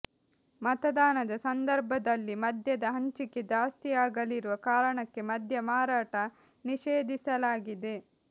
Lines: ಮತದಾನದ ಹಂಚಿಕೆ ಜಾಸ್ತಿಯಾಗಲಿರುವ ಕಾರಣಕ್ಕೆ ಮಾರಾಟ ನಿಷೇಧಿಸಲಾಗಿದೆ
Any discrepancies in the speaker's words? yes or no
yes